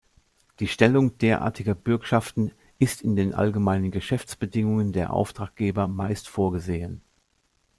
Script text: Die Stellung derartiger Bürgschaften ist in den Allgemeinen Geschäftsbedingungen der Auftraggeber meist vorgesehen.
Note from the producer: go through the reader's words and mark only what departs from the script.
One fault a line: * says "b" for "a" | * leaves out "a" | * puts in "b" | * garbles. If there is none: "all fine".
all fine